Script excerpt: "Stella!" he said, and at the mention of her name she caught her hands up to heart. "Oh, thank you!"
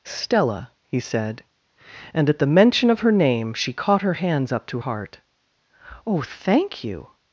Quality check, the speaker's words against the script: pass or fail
pass